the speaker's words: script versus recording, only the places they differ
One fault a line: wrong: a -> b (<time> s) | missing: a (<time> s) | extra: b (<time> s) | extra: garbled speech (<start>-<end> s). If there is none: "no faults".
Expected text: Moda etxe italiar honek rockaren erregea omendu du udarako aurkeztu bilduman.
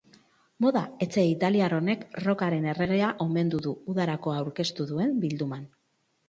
extra: duen (4.9 s)